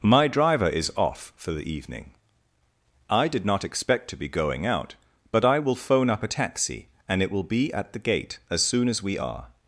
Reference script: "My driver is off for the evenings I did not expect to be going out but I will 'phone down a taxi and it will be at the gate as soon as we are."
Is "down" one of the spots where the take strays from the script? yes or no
yes